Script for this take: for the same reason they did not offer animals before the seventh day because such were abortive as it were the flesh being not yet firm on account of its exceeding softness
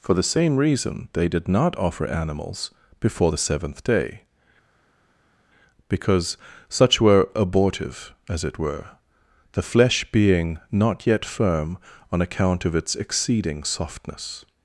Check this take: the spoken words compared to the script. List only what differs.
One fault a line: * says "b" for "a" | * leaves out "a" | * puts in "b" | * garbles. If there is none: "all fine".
all fine